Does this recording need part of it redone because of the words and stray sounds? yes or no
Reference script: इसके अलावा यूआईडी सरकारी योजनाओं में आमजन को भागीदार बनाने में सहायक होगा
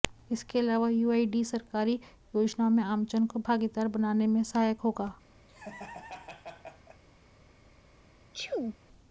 yes